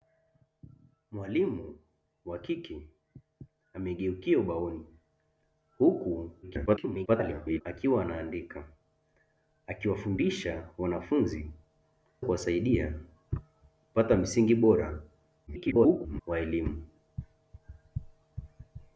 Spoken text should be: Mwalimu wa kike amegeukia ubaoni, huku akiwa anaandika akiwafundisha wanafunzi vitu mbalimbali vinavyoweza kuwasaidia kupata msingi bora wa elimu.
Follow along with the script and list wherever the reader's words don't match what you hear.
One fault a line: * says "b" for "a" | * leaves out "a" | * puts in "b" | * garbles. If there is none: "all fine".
* garbles
* leaves out "vitu mbalimbali vinavyoweza"
* garbles